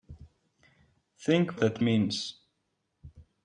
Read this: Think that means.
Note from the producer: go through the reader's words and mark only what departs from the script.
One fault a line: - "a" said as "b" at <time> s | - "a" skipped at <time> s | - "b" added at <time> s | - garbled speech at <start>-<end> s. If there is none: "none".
none